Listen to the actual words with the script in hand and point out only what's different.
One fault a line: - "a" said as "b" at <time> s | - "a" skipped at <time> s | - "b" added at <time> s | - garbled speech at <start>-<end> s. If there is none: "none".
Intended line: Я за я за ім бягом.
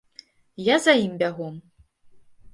- "я за" skipped at 0.9 s